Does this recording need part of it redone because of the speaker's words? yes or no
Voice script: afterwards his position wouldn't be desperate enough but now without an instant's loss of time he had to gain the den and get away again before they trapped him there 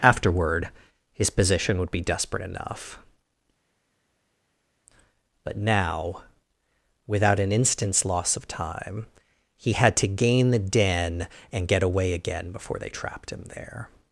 yes